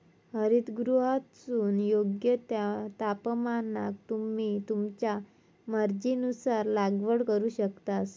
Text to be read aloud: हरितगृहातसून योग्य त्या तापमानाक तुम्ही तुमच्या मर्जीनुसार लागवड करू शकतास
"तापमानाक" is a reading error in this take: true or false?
false